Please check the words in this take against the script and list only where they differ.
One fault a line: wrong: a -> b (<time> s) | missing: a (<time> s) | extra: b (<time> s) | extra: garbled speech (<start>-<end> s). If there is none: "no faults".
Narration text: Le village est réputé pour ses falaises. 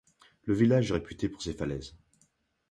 no faults